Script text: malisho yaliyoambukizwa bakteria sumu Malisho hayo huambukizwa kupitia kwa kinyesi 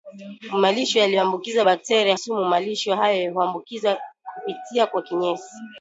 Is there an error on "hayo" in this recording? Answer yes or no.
no